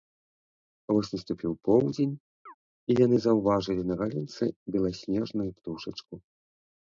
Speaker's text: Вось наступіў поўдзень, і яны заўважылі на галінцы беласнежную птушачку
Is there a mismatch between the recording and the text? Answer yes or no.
no